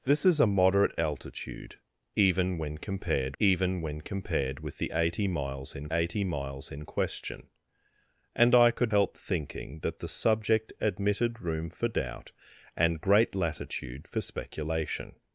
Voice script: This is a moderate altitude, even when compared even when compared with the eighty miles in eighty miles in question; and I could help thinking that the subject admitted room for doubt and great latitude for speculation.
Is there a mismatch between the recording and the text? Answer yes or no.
no